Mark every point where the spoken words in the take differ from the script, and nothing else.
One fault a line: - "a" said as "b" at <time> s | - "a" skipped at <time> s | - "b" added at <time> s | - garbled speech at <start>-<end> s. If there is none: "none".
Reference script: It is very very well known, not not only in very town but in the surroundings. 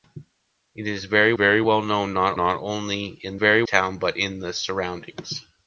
none